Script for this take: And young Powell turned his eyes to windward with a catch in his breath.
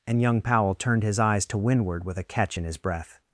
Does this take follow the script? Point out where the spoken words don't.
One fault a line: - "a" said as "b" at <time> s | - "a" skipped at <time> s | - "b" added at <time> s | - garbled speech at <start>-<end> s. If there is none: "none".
none